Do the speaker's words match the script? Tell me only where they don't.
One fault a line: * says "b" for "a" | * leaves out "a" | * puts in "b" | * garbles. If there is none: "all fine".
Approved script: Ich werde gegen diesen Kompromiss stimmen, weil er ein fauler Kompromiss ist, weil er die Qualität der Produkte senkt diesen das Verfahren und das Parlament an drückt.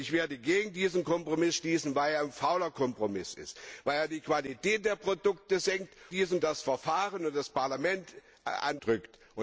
all fine